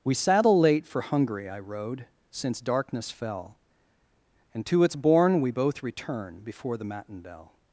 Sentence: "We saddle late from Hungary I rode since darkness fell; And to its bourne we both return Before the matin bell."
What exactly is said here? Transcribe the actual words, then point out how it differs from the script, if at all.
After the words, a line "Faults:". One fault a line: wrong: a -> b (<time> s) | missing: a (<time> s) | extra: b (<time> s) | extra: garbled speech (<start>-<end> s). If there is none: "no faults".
"We saddle late for Hungary I rode since darkness fell; And to its bourne we both return Before the matin bell."
Faults:
wrong: from -> for (0.8 s)